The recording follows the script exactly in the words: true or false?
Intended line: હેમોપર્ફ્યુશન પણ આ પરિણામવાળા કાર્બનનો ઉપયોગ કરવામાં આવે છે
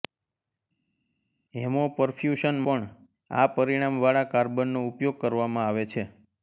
true